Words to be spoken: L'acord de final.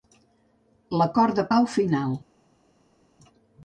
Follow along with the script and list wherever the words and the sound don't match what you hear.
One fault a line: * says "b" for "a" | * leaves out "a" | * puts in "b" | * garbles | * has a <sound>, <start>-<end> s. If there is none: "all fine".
* puts in "pau"